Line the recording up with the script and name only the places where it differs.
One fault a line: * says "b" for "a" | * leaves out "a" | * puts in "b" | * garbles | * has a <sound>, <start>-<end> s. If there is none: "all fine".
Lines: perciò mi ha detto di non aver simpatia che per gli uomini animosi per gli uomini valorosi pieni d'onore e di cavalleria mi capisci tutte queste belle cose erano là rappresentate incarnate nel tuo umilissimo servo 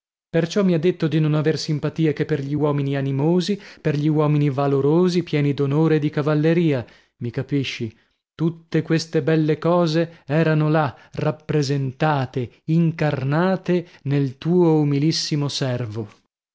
all fine